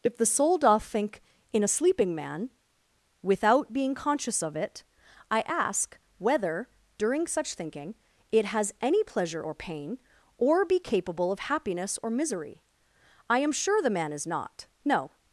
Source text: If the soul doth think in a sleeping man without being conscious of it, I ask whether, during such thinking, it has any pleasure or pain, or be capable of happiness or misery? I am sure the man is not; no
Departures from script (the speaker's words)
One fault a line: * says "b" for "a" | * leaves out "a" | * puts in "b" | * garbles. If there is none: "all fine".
all fine